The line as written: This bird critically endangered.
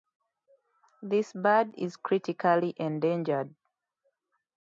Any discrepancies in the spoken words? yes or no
yes